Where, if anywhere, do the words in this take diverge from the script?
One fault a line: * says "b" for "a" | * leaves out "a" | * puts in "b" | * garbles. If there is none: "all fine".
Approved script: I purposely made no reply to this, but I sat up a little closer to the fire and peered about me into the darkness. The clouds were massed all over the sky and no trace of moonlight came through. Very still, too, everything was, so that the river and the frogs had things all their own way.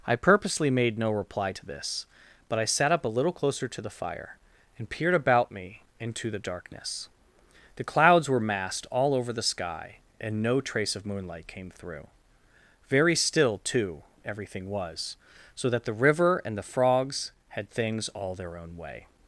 all fine